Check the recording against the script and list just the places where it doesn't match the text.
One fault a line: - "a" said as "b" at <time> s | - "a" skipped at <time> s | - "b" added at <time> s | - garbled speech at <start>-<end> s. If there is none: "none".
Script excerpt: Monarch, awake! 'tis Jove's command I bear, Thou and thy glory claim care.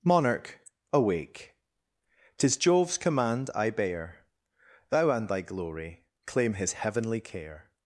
- "his heavenly" added at 6.5 s